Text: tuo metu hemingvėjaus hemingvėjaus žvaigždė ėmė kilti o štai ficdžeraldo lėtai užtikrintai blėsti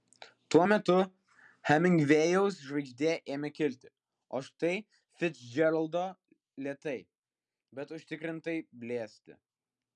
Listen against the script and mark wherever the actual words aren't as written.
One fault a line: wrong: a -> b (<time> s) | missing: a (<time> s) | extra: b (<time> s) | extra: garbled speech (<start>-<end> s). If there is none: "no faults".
missing: hemingvėjaus (2.6 s)
extra: bet (7.8 s)